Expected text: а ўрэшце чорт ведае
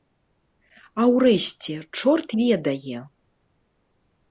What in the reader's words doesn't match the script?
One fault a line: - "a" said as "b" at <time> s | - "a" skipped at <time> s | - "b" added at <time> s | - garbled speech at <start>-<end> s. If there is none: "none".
none